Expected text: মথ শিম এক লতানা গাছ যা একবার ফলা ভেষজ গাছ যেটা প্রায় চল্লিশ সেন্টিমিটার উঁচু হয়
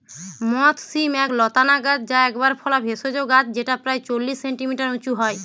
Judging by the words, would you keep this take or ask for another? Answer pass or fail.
pass